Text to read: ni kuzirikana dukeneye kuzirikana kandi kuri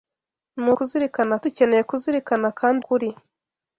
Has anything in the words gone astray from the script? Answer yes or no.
no